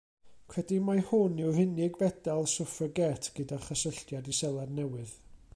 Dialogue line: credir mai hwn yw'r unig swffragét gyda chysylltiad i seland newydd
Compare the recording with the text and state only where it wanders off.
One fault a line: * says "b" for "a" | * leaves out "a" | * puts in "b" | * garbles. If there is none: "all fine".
* puts in "fedal"